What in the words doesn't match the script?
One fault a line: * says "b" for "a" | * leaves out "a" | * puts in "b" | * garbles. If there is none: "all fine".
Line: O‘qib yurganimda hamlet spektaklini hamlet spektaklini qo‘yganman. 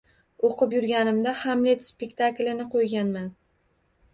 * leaves out "hamlet spektaklini"